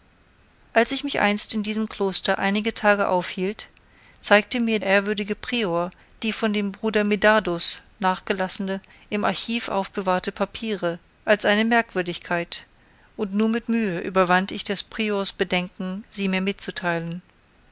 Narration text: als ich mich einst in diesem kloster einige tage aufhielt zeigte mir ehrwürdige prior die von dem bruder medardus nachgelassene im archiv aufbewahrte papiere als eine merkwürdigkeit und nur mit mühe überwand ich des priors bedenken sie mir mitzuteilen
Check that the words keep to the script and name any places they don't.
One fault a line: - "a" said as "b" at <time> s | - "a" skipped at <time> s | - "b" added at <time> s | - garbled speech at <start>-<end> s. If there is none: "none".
none